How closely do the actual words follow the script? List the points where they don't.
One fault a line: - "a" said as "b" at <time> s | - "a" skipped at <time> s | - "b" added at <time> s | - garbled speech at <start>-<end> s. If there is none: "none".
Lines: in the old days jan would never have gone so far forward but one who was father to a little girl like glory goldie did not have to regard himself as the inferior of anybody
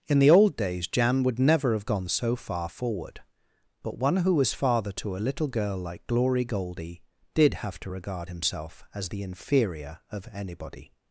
- "not" skipped at 7.5 s